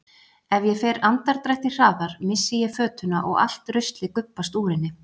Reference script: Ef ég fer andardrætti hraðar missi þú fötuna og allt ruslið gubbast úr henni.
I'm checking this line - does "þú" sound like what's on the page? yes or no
no